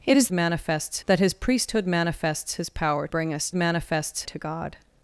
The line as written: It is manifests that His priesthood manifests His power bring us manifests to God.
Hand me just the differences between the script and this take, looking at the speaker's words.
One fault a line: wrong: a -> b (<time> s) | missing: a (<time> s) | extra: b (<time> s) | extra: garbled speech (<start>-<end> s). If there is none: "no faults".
no faults